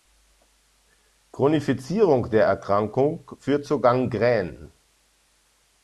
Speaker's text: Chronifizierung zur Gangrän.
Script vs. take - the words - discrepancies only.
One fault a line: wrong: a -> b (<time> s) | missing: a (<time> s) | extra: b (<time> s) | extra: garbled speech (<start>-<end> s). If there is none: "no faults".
extra: der Erkrankung führt (2.3 s)